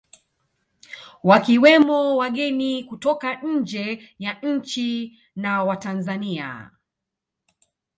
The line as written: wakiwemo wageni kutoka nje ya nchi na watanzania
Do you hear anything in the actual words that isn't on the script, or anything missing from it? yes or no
no